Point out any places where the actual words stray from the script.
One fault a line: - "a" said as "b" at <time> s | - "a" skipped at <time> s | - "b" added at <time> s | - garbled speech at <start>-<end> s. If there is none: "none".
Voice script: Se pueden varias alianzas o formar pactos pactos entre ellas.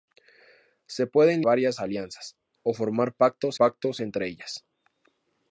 none